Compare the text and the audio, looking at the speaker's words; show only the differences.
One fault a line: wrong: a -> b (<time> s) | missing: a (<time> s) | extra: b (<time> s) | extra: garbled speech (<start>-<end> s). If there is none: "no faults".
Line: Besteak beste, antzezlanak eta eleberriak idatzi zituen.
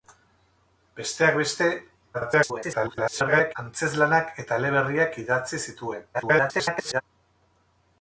extra: garbled speech (2.1-3.6 s)
extra: garbled speech (6.1-7.0 s)